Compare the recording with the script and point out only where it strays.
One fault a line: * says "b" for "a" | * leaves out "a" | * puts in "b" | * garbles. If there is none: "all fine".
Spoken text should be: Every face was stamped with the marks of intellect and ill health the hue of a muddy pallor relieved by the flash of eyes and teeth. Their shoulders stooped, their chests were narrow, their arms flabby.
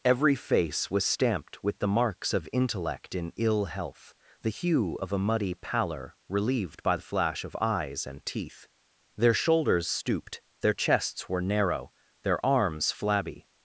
* says "in" for "and"